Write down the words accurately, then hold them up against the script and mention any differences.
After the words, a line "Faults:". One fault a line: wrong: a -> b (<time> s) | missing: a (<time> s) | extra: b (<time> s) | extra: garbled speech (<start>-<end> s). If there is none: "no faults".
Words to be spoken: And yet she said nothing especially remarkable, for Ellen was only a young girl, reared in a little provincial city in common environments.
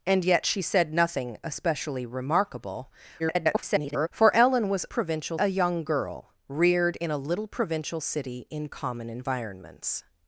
And yet she said nothing especially remarkable, [garbled] for Ellen was provincial a young girl, reared in a little provincial city in common environments.
Faults:
extra: garbled speech (3.2-4.1 s)
wrong: only -> provincial (4.9 s)